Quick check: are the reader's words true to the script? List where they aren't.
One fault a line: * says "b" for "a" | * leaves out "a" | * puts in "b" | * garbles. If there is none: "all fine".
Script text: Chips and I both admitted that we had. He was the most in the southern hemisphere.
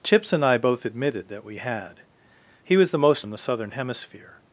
all fine